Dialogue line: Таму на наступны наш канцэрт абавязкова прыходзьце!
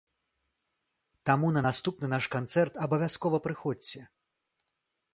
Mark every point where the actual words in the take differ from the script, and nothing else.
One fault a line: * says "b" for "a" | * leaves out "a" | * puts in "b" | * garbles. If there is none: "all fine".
all fine